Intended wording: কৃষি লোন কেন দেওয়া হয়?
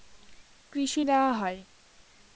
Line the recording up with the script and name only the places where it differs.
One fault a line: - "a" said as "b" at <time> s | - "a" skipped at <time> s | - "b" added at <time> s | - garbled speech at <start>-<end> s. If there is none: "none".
- "লোন কেন" skipped at 1.0 s